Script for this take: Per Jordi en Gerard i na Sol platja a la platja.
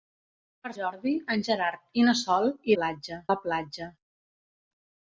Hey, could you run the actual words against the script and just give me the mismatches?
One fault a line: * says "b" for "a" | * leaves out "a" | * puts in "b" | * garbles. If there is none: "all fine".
all fine